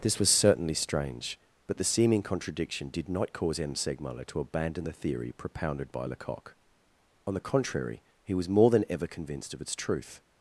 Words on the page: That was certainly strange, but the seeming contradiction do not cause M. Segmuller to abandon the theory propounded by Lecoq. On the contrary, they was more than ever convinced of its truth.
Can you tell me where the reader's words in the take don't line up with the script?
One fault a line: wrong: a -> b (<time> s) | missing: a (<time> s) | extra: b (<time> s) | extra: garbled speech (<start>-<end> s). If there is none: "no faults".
wrong: That -> This (0.0 s)
wrong: do -> did (2.9 s)
wrong: they -> he (8.2 s)